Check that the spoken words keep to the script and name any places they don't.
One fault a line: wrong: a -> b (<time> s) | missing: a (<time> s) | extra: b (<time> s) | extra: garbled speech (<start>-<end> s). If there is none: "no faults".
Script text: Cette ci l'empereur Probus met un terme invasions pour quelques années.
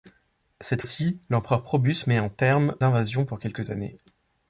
no faults